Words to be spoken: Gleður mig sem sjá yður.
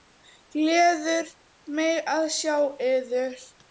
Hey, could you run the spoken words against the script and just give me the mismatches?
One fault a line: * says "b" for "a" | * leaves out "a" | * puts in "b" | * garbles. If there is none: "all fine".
* says "að" for "sem"